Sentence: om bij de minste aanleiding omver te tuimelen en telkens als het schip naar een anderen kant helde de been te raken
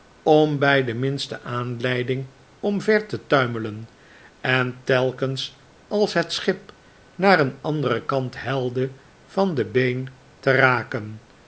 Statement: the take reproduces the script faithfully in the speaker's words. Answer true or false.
false